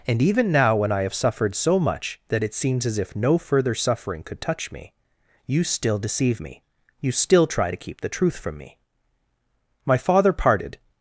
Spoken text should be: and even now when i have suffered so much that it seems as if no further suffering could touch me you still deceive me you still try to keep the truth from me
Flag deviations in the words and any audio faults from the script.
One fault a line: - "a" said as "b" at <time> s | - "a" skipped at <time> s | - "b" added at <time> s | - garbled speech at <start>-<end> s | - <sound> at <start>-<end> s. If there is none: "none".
- "my father parted" added at 9.8 s